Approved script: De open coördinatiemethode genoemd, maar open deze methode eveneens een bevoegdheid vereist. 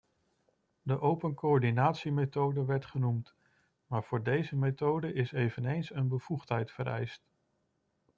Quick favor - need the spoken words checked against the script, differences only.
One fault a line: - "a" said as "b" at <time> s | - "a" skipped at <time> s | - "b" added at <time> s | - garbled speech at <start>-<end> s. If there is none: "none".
- "werd" added at 2.6 s
- "open" said as "voor" at 4.0 s
- "is" added at 5.1 s